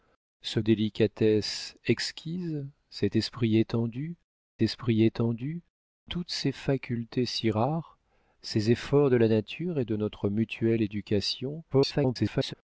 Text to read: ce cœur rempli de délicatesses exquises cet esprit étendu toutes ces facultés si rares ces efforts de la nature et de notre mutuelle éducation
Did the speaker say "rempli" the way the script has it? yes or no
no